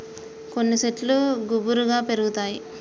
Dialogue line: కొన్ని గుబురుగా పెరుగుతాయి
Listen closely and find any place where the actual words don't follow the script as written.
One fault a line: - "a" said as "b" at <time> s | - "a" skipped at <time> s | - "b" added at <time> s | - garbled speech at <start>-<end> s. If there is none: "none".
- "శెట్లు" added at 0.8 s